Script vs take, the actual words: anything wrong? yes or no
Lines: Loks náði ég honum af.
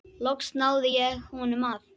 no